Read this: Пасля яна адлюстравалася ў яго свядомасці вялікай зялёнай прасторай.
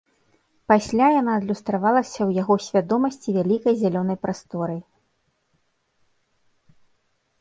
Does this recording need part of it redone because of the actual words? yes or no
no